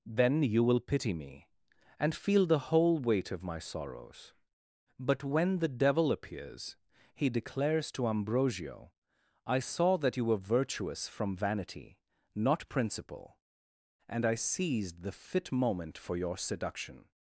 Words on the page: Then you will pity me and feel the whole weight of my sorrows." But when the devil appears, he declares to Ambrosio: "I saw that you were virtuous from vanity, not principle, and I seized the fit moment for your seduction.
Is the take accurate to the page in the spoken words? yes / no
yes